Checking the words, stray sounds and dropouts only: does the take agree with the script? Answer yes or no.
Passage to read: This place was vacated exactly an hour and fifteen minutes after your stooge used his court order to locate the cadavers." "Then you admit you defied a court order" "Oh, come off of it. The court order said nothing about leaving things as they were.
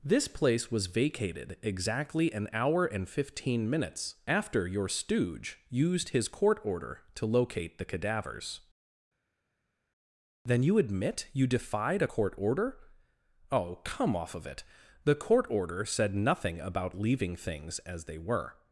yes